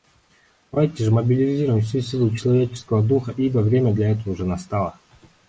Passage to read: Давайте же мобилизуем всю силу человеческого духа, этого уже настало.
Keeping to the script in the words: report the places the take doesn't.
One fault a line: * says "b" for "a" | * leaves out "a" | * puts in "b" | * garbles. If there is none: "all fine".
* puts in "ибо время для"